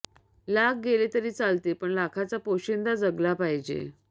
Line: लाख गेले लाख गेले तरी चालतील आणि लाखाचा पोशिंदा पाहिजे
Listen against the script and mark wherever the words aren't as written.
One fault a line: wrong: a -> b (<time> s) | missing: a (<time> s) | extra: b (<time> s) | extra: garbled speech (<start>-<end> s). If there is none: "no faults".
missing: लाख गेले (1.1 s)
wrong: आणि -> पण (1.8 s)
extra: जगला (3.0 s)